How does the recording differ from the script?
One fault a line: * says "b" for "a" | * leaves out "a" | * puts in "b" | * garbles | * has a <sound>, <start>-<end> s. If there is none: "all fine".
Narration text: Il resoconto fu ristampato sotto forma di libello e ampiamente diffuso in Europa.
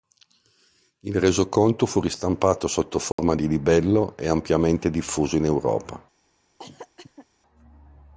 * has a dropout, 3.1-3.2 s
* has a cough, 6.6-7.3 s